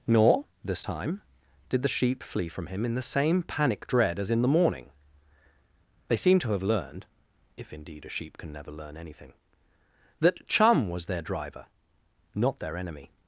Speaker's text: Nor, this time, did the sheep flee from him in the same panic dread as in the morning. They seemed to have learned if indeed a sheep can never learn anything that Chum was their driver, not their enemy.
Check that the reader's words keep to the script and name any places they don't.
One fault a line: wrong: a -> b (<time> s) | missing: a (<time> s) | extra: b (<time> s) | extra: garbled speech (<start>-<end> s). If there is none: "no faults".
no faults